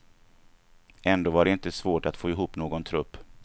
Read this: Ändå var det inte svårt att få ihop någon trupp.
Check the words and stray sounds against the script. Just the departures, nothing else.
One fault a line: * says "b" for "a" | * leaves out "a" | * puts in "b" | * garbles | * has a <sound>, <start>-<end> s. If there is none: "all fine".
all fine